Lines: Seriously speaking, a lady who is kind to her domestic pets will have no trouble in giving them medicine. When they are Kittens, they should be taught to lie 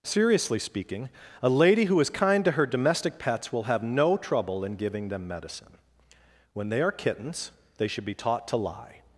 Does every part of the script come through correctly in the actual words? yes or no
yes